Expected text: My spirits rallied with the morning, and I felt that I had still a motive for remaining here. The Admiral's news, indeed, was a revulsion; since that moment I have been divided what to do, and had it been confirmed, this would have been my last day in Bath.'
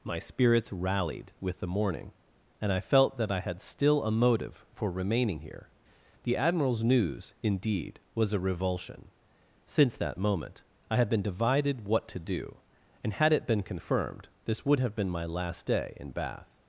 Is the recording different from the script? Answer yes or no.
yes